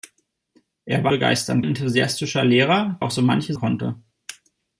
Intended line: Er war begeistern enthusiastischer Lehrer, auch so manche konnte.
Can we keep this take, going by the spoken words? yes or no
yes